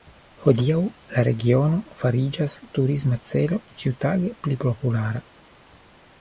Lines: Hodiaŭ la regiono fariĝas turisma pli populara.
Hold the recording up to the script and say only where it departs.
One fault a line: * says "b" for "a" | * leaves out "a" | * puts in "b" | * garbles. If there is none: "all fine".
* puts in "celo ĉiutage"